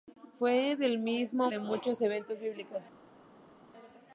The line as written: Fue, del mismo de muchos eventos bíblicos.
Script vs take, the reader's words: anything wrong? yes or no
no